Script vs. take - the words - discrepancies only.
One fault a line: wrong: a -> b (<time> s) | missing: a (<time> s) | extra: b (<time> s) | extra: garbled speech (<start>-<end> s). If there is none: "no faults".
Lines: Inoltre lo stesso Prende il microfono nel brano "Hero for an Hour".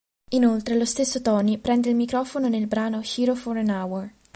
extra: Tony (1.2 s)